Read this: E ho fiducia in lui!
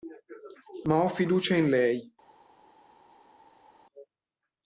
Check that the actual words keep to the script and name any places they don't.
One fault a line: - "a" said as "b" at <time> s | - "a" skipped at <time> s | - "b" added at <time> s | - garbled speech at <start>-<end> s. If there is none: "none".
- "E" said as "Ma" at 0.8 s
- "lui" said as "lei" at 1.7 s